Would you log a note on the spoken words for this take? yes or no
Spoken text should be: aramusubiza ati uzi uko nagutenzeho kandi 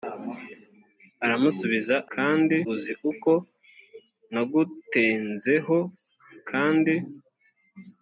yes